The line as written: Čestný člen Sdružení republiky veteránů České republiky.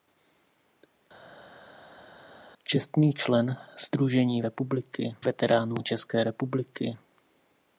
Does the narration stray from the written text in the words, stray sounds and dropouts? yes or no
no